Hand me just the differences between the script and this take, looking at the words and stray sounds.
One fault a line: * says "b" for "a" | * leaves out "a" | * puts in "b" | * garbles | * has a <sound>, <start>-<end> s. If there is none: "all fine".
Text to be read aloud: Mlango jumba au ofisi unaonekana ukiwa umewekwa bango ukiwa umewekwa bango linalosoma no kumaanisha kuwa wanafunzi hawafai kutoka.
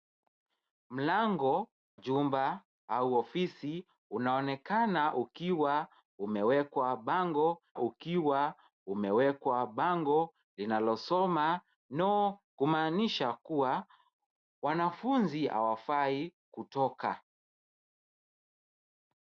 all fine